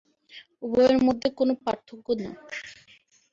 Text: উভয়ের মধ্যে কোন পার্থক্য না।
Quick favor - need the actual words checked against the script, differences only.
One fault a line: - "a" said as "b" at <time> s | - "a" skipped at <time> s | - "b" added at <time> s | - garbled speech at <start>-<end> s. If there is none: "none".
none